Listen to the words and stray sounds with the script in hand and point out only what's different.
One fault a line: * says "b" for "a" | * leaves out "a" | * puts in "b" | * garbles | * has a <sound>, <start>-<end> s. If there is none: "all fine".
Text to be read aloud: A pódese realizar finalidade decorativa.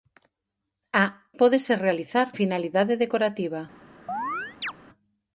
* has a chirp, 4.1-4.7 s